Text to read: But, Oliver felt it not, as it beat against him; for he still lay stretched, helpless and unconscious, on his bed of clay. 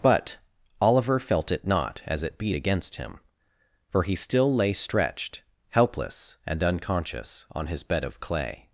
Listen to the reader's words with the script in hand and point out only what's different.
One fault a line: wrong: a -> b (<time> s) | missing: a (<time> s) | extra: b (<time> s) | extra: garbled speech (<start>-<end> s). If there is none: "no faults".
no faults